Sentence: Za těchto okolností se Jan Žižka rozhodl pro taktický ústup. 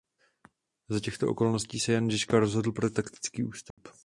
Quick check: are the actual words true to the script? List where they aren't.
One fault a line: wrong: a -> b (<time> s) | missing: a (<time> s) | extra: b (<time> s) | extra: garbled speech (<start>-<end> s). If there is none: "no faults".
no faults